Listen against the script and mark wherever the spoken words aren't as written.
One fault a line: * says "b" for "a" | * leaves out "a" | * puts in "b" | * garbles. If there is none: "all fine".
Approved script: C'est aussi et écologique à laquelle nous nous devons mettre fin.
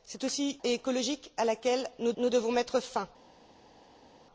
all fine